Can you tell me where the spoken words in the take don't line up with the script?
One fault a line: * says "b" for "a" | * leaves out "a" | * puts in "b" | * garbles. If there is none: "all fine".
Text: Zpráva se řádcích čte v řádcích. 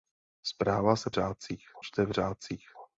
all fine